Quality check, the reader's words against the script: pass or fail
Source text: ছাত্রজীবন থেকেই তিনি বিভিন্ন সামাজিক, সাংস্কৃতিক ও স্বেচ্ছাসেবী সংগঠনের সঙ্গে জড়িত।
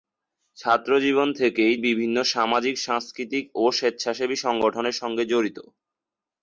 fail